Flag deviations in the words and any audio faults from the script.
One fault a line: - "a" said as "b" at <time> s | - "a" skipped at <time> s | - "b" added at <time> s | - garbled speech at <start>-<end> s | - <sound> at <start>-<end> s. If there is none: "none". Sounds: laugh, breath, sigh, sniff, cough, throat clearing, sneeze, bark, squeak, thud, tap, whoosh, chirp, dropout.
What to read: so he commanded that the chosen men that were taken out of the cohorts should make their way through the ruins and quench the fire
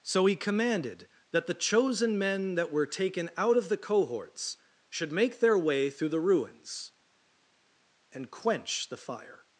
none